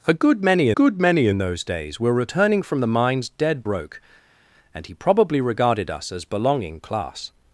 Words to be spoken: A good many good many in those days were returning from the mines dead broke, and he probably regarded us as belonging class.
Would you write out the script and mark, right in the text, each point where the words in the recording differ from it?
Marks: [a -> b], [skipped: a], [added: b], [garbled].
A good many good many in those days were returning from the mines dead broke, and he probably regarded us as belonging class.